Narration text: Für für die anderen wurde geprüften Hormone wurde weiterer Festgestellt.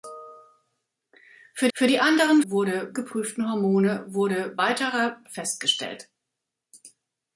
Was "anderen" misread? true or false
false